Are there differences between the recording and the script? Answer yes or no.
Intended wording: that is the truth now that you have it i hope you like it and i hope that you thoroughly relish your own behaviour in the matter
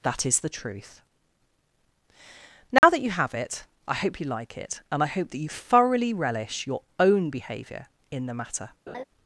no